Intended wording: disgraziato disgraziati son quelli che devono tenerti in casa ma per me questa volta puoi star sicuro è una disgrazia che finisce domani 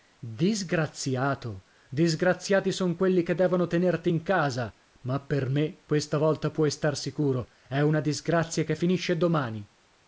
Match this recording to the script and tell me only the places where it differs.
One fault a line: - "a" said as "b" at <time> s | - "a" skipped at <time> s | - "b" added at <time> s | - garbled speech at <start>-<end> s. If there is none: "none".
none